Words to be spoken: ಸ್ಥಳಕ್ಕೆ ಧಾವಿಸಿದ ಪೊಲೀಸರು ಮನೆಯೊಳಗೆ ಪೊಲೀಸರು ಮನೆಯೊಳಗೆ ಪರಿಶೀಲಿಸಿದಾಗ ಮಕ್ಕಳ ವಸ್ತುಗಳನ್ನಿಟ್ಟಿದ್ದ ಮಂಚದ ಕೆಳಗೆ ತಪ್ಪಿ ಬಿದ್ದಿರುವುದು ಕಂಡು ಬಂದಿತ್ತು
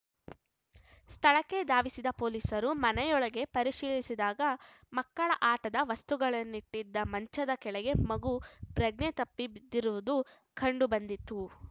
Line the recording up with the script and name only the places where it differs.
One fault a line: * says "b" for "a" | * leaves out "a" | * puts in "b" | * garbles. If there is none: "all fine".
* leaves out "ಪೊಲೀಸರು ಮನೆಯೊಳಗೆ"
* puts in "ಆಟದ"
* puts in "ಮಗು ಪ್ರಜ್ಞೆ"